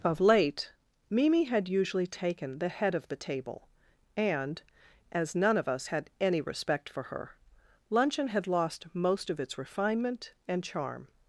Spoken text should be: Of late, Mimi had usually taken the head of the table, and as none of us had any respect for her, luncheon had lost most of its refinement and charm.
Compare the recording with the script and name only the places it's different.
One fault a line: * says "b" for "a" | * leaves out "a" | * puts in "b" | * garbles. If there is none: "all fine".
all fine